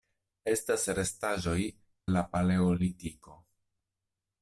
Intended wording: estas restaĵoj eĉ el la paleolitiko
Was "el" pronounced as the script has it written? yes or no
no